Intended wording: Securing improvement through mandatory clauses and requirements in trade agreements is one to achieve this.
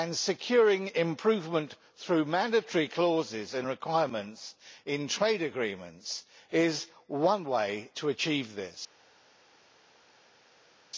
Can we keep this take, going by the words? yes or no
no